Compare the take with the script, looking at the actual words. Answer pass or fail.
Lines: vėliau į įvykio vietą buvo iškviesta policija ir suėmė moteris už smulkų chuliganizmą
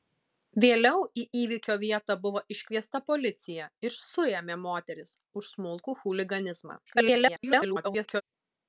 fail